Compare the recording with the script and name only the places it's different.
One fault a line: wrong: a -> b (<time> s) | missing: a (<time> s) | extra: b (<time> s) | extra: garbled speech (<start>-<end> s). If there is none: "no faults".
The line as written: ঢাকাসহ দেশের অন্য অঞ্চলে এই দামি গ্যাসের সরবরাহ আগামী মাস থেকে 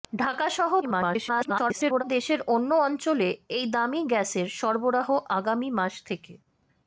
extra: garbled speech (0.8-2.0 s)